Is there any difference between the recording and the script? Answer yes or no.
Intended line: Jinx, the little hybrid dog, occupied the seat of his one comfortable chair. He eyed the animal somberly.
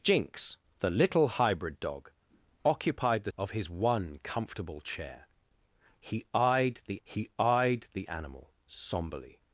yes